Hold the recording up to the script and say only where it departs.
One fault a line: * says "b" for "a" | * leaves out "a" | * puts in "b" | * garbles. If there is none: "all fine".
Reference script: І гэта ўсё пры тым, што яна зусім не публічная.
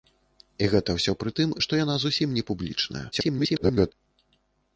* garbles